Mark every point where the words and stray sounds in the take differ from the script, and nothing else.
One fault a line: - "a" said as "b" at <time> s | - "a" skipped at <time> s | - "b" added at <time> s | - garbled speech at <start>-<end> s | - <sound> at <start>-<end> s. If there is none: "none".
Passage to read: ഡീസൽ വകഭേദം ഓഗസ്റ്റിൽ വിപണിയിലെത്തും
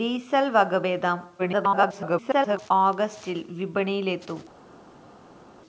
- garbled speech at 1.4-2.7 s